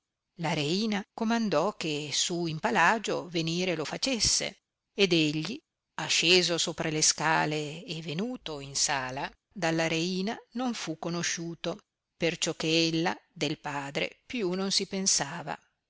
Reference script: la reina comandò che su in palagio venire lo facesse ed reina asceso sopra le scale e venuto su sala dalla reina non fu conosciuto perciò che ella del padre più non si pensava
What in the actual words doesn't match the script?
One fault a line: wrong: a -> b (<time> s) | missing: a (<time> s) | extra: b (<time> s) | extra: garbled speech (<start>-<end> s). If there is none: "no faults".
wrong: reina -> egli (5.1 s)
wrong: su -> in (8.6 s)